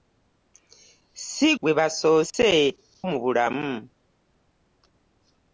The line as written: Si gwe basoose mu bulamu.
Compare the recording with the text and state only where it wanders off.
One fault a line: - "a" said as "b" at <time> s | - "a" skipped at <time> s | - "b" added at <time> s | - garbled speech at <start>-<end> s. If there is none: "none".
none